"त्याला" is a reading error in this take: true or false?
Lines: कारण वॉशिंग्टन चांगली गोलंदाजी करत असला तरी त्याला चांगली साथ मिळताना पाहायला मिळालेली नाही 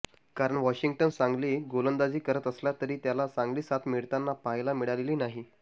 false